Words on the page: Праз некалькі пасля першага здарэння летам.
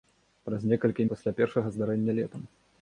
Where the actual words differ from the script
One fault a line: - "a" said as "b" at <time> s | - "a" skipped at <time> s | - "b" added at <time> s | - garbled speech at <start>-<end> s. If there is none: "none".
none